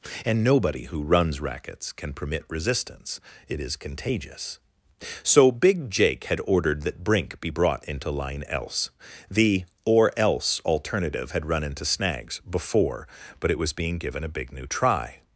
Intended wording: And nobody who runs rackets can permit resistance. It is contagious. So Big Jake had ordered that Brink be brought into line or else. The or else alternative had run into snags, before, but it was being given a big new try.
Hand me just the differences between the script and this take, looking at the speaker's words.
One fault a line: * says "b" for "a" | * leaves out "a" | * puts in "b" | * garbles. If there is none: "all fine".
* leaves out "or"